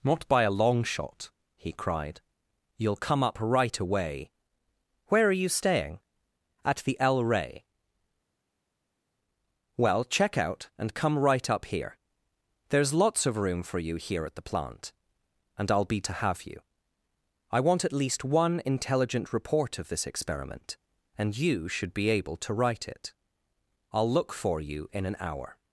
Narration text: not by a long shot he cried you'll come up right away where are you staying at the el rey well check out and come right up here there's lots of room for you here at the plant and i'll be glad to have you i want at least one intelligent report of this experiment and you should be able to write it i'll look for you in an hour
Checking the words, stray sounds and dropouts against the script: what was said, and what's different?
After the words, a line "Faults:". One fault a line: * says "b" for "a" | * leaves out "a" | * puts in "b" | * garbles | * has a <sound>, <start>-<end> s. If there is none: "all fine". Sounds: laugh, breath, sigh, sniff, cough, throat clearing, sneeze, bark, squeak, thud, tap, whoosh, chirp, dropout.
not by a long shot he cried you'll come up right away where are you staying at the el rey well check out and come right up here there's lots of room for you here at the plant and i'll be to have you i want at least one intelligent report of this experiment and you should be able to write it i'll look for you in an hour
Faults:
* leaves out "glad"